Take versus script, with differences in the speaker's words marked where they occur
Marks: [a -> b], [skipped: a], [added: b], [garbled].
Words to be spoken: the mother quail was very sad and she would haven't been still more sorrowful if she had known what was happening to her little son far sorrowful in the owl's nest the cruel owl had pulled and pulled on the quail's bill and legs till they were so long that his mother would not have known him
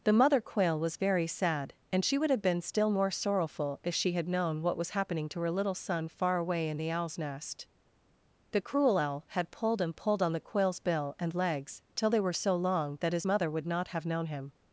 the mother quail was very sad and she would [haven't -> have] been still more sorrowful if she had known what was happening to her little son far [sorrowful -> away] in the owl's nest the cruel owl had pulled and pulled on the quail's bill and legs till they were so long that his mother would not have known him